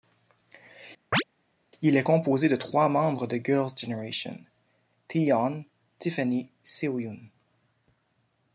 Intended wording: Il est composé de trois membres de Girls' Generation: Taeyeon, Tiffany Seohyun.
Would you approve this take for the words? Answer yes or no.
yes